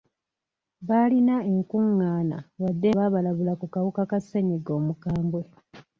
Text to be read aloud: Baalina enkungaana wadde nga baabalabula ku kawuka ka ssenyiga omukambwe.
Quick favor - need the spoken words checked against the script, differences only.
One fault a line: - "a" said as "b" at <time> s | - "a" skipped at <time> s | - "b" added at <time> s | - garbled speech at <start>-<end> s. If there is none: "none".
- "nga" skipped at 2.9 s